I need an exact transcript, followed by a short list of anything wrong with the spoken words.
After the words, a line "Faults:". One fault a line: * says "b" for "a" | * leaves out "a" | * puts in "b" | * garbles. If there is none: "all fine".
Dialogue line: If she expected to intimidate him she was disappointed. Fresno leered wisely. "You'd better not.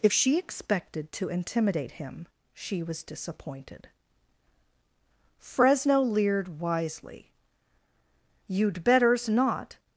If she expected to intimidate him she was disappointed. Fresno leered wisely. "You'd betters not.
Faults:
* says "betters" for "better"